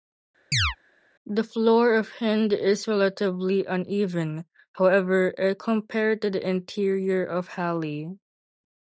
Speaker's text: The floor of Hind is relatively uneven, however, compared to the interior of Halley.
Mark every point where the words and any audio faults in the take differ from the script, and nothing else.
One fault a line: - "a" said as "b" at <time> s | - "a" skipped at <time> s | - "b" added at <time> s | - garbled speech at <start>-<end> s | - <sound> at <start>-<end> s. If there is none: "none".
- chirp at 0.5-0.8 s